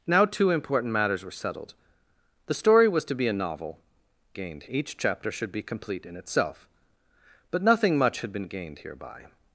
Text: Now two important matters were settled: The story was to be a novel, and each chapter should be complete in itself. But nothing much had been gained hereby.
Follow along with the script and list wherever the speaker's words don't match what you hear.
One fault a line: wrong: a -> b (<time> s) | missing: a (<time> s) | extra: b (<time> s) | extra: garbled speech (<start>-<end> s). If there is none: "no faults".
wrong: and -> gained (4.3 s)